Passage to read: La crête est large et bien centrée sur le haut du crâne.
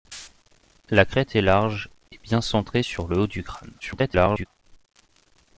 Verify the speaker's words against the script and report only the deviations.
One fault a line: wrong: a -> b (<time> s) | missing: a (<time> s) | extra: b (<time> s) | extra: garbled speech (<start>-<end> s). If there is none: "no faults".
extra: garbled speech (3.8-4.5 s)